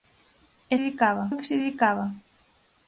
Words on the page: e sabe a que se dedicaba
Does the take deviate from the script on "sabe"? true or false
true